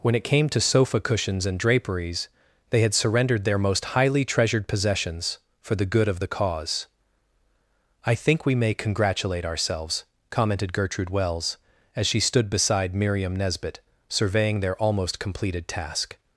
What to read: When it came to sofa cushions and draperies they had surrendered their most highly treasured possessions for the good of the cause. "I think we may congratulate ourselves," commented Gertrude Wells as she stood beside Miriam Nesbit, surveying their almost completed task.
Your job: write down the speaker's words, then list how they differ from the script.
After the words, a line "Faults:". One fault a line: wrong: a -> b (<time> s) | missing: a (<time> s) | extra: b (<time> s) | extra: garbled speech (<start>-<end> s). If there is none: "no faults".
When it came to sofa cushions and draperies they had surrendered their most highly treasured possessions for the good of the cause. "I think we may congratulate ourselves," commented Gertrude Wells as she stood beside Miriam Nesbit, surveying their almost completed task.
Faults:
no faults